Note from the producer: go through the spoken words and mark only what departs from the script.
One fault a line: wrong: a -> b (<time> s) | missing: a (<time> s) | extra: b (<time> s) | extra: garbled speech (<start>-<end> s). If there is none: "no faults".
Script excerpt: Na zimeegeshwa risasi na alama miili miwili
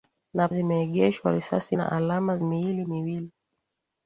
no faults